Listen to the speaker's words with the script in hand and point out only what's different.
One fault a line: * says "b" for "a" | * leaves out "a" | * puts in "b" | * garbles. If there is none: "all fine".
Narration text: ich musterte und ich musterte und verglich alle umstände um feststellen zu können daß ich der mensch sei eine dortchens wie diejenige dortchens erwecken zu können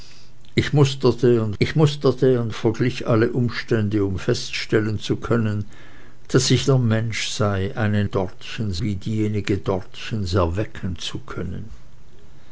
all fine